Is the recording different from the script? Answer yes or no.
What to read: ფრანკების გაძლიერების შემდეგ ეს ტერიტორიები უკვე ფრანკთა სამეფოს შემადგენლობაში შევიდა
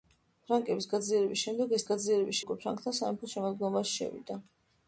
yes